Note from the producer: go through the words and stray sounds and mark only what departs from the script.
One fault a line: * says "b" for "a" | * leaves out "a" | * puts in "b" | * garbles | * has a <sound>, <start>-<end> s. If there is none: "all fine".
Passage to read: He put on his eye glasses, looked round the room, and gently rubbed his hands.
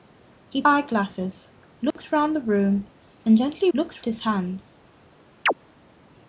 * leaves out "put on his"
* has a dropout, 1.9-2.0 s
* says "looked" for "rubbed"
* has a chirp, 5.5-5.5 s